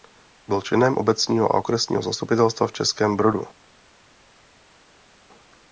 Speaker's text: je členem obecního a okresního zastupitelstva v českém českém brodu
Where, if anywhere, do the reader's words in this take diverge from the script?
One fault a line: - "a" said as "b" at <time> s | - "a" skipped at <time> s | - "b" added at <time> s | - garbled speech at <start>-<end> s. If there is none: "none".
- "je" said as "byl" at 0.5 s
- "českém" skipped at 3.2 s